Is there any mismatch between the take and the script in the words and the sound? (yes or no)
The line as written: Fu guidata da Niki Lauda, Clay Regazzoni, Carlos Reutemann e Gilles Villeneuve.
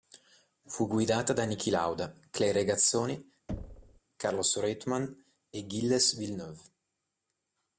yes